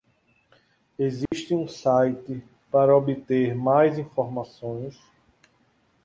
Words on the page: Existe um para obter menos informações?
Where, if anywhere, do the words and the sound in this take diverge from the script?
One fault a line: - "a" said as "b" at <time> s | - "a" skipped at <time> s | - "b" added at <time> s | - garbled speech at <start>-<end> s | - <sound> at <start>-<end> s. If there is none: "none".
- dropout at 1.3-1.3 s
- "site" added at 1.7 s
- "menos" said as "mais" at 3.5 s